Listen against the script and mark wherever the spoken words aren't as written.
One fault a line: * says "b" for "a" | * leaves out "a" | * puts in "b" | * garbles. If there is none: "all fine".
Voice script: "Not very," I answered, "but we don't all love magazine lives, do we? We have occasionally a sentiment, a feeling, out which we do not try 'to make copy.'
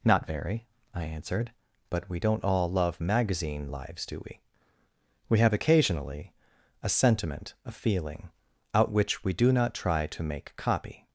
all fine